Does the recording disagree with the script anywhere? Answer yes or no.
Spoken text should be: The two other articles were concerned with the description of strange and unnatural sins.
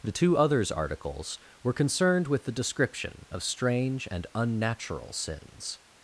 yes